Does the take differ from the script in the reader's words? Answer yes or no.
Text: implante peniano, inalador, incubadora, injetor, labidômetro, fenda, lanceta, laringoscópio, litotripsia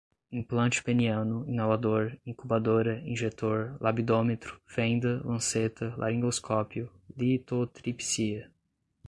no